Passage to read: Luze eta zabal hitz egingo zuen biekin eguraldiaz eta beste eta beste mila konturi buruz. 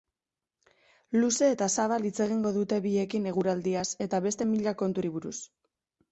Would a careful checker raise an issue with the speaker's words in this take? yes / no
yes